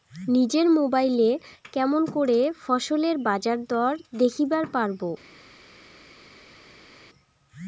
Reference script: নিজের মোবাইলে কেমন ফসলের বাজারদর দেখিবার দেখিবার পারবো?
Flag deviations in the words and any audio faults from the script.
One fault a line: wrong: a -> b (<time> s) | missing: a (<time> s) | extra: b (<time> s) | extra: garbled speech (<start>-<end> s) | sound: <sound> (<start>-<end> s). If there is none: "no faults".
extra: করে (2.1 s)
missing: দেখিবার (4.7 s)